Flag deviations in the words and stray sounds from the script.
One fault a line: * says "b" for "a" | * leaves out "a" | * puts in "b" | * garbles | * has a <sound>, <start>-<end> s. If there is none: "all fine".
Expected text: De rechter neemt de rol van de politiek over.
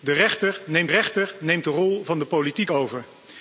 * puts in "rechter neemt"